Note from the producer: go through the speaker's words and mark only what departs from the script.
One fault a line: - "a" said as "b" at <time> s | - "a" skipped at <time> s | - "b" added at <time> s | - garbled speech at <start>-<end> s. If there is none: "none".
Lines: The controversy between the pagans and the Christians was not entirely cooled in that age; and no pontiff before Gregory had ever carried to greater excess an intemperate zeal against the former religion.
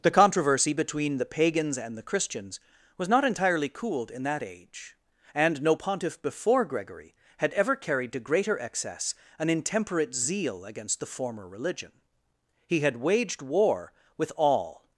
- "He had waged war with all" added at 12.6 s